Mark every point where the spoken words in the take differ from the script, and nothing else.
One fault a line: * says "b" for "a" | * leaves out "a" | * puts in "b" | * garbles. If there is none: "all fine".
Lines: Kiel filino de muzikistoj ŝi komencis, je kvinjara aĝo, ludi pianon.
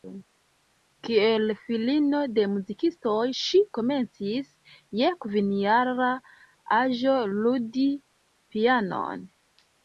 all fine